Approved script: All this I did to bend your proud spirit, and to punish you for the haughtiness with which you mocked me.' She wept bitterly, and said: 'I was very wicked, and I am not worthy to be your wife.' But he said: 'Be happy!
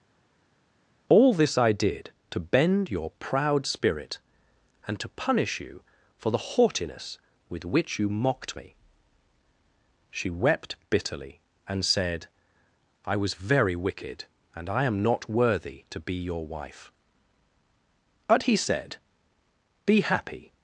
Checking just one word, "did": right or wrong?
right